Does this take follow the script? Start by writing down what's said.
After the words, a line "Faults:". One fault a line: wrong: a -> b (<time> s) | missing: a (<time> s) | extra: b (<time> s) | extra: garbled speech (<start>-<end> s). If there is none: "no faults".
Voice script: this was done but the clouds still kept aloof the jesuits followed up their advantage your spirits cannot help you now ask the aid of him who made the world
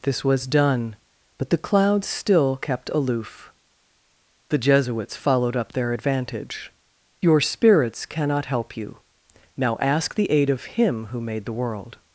this was done but the clouds still kept aloof the jesuits followed up their advantage your spirits cannot help you now ask the aid of him who made the world
Faults:
no faults